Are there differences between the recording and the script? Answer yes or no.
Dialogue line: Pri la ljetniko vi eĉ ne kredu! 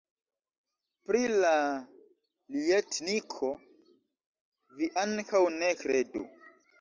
yes